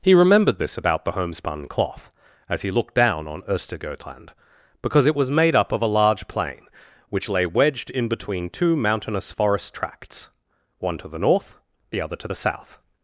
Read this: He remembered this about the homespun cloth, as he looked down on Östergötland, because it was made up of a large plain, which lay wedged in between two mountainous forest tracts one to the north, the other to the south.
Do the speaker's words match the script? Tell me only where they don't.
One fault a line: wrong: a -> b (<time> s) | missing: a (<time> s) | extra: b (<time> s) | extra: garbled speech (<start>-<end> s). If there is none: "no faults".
no faults